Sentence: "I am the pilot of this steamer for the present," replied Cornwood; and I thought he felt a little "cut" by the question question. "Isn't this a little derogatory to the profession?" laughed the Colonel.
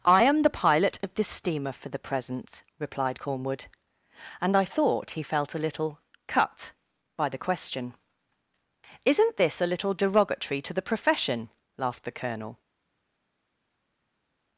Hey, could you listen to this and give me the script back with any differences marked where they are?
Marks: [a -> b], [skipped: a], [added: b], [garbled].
"I am the pilot of this steamer for the present," replied Cornwood; and I thought he felt a little "cut" by the question [skipped: question.] "Isn't this a little derogatory to the profession?" laughed the Colonel.